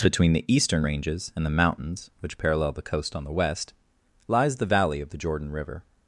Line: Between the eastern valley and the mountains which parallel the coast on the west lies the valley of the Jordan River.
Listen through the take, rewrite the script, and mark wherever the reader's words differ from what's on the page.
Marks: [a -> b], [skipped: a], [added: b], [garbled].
Between the eastern [valley -> ranges] and the mountains which parallel the coast on the west lies the valley of the Jordan River.